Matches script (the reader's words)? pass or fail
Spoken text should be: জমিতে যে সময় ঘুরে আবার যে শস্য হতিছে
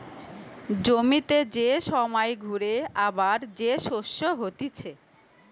pass